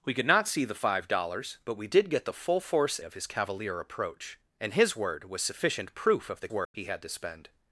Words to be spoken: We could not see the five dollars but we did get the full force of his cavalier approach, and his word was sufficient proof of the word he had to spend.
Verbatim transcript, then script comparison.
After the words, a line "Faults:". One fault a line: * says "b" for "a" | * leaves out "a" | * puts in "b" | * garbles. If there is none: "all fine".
We could not see the five dollars but we did get the full force of his cavalier approach, and his word was sufficient proof of the word he had to spend.
Faults:
all fine